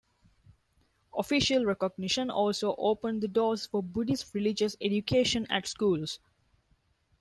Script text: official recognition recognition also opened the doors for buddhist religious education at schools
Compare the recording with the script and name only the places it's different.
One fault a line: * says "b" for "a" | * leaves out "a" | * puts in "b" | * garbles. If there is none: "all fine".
* leaves out "recognition"